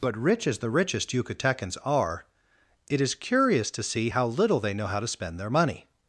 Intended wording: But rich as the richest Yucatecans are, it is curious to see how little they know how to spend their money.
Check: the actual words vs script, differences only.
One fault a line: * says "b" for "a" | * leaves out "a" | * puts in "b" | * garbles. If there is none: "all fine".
all fine